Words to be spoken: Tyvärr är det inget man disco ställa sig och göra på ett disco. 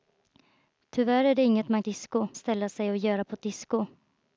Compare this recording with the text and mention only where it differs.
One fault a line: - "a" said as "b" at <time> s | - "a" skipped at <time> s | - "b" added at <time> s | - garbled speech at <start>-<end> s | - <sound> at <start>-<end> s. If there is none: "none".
none